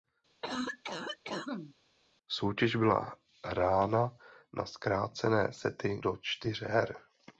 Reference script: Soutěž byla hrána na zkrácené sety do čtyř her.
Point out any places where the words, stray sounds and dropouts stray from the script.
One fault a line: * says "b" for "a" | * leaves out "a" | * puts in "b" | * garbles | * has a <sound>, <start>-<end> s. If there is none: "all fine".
* has a cough, 0.4-1.7 s